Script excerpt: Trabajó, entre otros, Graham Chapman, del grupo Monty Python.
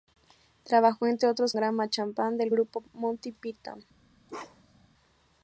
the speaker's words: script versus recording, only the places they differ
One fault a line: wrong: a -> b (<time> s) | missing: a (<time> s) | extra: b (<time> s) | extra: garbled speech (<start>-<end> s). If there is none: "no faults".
no faults